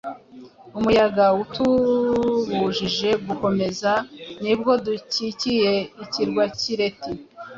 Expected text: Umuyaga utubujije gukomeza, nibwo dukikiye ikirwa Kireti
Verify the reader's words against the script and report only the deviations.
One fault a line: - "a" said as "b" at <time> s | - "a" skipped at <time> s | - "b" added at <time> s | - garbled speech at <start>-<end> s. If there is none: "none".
none